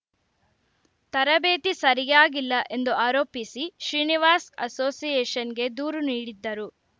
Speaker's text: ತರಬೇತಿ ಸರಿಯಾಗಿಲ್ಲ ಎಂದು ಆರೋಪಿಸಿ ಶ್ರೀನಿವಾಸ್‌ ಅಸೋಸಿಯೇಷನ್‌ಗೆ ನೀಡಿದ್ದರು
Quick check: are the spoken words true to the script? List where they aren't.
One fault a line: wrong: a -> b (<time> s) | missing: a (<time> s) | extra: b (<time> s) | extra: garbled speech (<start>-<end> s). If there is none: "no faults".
extra: ದೂರು (5.8 s)